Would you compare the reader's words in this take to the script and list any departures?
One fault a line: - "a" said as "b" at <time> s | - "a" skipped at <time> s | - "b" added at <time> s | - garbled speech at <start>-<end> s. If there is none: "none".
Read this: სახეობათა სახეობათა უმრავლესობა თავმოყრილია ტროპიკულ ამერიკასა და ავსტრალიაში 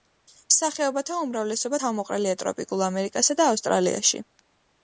- "სახეობათა" skipped at 1.2 s